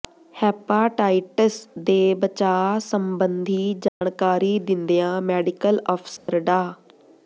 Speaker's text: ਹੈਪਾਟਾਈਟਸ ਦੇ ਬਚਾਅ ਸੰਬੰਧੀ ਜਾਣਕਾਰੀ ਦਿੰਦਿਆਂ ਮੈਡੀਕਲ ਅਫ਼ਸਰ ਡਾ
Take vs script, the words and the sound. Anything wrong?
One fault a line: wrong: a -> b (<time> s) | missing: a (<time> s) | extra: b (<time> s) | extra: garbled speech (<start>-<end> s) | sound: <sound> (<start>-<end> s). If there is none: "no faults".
sound: dropout (3.9-4.0 s)
sound: dropout (6.2-6.3 s)